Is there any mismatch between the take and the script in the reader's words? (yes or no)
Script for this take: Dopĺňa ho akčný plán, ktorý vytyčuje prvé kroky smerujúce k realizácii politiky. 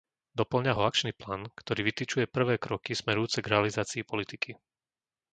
no